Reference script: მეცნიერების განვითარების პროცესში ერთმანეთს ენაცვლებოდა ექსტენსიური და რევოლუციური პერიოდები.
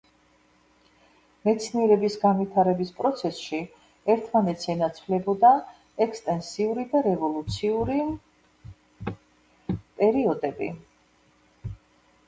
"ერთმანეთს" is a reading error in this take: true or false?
false